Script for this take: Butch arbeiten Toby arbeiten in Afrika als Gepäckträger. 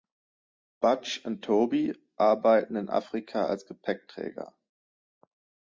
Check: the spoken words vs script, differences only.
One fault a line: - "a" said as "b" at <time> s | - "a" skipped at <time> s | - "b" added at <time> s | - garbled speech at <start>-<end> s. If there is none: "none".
- "arbeiten" said as "und" at 1.2 s